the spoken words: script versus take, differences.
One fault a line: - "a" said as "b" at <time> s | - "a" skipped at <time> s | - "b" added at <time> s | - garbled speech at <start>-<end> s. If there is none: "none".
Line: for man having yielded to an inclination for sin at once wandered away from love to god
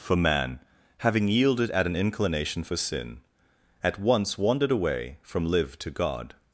- "to" said as "at" at 1.7 s
- "love" said as "live" at 5.5 s